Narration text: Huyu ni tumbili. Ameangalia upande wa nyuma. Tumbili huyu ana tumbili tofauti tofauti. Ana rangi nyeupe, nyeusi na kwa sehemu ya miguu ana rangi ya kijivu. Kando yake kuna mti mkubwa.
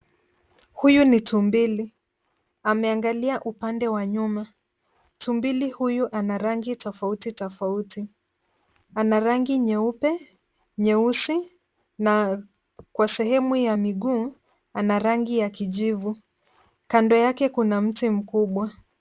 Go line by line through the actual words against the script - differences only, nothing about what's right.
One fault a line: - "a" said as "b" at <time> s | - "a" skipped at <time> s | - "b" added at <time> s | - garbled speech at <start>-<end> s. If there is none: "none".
- "tumbili" said as "rangi" at 6.4 s